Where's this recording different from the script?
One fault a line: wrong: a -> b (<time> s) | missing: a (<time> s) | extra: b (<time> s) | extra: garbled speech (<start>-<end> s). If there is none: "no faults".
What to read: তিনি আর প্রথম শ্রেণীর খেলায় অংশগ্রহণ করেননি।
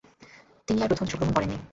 missing: শ্রেণীর খেলায় (1.0 s)